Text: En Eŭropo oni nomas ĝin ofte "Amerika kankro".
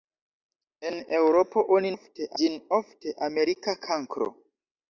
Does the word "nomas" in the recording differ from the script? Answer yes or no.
yes